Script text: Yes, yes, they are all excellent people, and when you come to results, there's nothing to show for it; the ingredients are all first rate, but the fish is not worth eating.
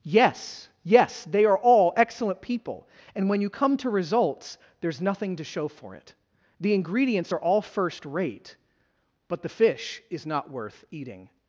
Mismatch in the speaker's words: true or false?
false